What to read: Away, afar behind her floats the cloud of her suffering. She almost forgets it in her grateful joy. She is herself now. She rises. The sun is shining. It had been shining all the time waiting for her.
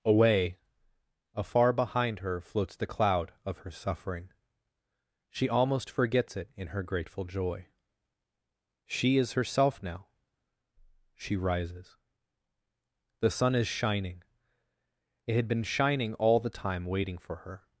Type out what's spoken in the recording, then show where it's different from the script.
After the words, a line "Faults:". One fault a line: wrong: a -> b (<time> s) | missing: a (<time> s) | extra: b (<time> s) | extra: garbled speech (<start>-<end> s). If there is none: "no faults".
Away, afar behind her floats the cloud of her suffering. She almost forgets it in her grateful joy. She is herself now. She rises. The sun is shining. It had been shining all the time waiting for her.
Faults:
no faults